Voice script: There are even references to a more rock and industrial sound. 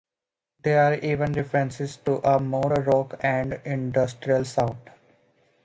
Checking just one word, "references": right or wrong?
right